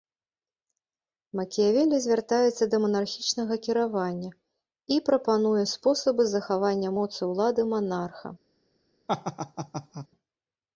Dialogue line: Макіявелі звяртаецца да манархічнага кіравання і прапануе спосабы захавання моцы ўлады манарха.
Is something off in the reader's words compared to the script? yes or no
no